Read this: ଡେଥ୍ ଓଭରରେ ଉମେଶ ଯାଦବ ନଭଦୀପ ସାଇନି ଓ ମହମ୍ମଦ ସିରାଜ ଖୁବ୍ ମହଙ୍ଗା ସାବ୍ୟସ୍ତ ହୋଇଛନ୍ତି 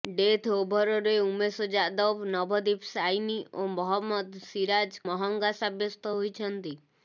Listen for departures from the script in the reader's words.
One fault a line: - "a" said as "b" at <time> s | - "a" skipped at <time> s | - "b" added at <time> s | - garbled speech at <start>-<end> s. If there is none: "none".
- "ଖୁବ୍" skipped at 5.0 s